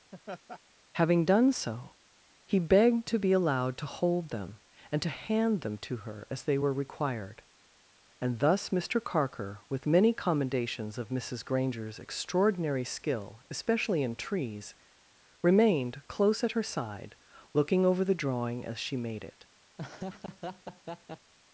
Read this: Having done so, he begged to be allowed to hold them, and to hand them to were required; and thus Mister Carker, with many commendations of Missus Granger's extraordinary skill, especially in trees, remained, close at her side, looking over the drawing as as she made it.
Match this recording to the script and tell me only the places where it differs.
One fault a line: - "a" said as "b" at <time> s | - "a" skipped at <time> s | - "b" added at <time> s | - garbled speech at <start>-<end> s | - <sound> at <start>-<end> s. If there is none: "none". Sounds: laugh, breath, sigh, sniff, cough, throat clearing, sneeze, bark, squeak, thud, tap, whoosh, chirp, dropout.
- laugh at 0.1-0.6 s
- "her as they" added at 6.0 s
- "as" skipped at 18.8 s
- laugh at 19.8-21.3 s